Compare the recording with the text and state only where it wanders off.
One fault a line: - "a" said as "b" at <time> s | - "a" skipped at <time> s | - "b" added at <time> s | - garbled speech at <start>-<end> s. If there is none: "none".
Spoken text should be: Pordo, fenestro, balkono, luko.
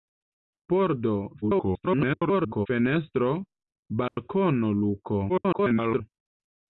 - garbled speech at 1.4-2.7 s
- garbled speech at 5.3-6.0 s